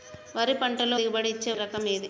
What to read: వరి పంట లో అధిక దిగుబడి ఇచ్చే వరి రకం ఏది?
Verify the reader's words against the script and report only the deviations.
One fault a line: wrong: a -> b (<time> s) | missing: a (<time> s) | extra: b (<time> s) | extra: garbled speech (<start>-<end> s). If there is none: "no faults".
missing: అధిక (1.0 s)
missing: వరి (1.5 s)